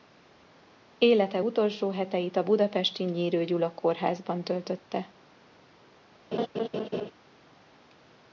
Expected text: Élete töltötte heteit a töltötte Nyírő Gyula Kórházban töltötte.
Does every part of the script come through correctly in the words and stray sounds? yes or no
no